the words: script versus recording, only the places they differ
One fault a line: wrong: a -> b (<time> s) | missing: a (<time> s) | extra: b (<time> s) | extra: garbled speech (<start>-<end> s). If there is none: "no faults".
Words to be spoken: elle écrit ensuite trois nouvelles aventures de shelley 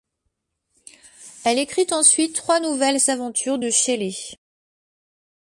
no faults